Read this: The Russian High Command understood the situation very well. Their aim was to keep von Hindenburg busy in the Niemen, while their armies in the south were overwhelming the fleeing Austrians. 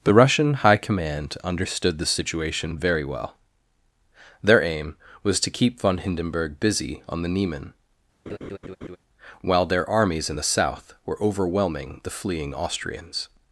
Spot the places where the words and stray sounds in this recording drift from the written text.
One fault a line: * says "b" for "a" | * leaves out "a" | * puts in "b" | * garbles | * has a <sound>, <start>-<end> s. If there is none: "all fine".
* says "on" for "in"
* has a laugh, 8.3-9.0 s